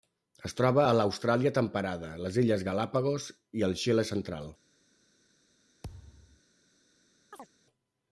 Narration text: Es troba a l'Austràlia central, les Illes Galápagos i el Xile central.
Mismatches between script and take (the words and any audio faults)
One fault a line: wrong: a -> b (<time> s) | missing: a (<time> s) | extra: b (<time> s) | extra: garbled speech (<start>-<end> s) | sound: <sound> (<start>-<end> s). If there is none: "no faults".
wrong: central -> temperada (1.6 s)
sound: thud (5.8-6.4 s)
sound: chirp (7.3-7.5 s)